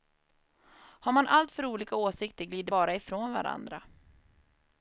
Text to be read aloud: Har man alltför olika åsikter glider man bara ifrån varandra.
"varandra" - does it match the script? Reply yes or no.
yes